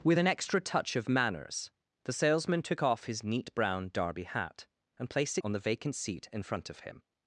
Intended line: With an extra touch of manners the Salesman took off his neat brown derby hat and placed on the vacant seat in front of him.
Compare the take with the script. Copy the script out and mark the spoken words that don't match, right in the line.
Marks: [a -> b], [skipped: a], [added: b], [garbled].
With an extra touch of manners the Salesman took off his neat brown derby hat and placed on the vacant seat in front of him.